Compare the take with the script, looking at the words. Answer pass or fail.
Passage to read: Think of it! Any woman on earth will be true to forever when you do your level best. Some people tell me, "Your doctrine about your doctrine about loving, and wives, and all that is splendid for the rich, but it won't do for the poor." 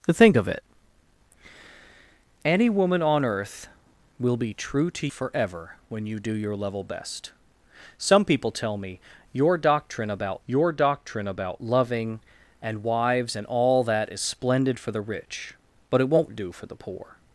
pass